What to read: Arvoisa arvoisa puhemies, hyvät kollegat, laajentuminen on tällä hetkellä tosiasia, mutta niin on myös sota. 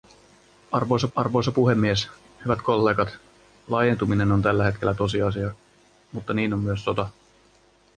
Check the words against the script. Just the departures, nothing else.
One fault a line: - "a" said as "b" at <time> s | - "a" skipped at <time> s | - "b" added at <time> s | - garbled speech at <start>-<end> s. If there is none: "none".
none